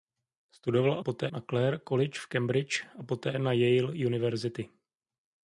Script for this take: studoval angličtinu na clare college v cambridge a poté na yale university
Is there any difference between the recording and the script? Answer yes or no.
yes